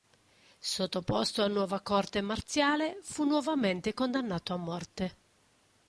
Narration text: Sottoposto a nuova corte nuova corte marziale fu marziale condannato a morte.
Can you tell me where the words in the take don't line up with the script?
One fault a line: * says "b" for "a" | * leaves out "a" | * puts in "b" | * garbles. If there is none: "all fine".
* leaves out "nuova corte"
* says "nuovamente" for "marziale"